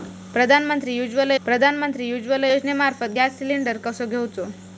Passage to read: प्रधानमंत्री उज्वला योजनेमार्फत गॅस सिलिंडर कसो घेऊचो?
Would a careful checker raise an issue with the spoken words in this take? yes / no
yes